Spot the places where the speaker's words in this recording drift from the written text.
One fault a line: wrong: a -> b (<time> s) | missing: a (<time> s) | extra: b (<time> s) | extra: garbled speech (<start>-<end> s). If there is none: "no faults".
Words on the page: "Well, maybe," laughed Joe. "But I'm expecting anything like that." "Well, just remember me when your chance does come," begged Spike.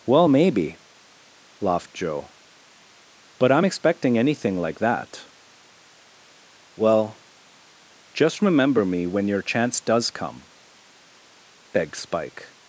no faults